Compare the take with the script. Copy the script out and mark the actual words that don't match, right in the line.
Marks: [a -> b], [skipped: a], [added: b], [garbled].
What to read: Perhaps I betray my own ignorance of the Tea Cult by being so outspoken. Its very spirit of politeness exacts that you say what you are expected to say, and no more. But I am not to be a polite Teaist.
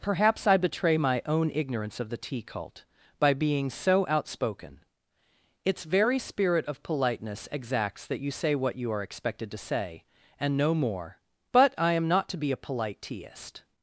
Perhaps I betray my own ignorance of the Tea Cult by being so outspoken. Its very spirit of politeness exacts that you say what you are expected to say, and no more. But I am not to be a polite Teaist.